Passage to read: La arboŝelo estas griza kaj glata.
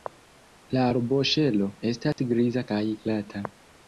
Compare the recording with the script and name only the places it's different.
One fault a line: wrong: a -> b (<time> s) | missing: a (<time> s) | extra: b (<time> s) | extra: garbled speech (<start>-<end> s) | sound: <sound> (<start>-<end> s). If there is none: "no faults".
sound: dropout (2.1-2.2 s)